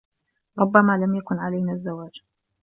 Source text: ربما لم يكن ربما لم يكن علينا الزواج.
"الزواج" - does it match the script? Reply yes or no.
yes